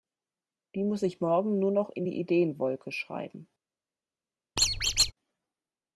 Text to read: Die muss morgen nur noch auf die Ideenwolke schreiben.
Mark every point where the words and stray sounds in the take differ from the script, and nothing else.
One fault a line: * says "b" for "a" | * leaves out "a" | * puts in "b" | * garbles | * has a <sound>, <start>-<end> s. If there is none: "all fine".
* puts in "ich"
* says "in" for "auf"
* has a squeak, 4.6-5.1 s